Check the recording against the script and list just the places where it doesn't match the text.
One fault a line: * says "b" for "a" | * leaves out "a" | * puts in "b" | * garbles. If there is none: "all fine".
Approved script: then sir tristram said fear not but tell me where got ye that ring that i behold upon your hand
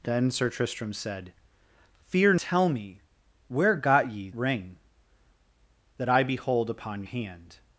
* leaves out "not but"
* leaves out "that"
* leaves out "your"